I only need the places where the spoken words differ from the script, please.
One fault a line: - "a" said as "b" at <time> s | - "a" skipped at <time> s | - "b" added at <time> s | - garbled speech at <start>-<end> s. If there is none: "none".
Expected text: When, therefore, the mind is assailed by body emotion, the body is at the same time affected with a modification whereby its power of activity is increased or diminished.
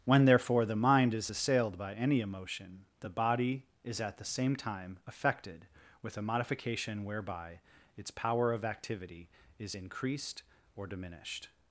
- "body" said as "any" at 1.9 s